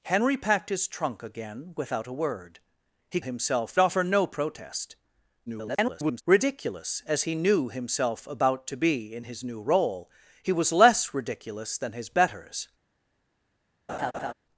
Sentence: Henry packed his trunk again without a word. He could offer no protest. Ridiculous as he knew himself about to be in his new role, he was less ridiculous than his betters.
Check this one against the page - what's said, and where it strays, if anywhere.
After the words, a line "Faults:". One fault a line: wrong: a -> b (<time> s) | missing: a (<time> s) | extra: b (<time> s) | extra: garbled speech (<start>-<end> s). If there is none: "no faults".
Henry packed his trunk again without a word. He himself offer no protest. [garbled] Ridiculous as he knew himself about to be in his new role, he was less ridiculous than his betters.
Faults:
wrong: could -> himself (3.2 s)
extra: garbled speech (5.5-6.2 s)